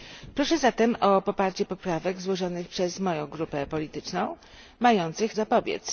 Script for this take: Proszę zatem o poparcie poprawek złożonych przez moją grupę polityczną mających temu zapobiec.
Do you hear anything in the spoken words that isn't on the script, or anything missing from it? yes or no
yes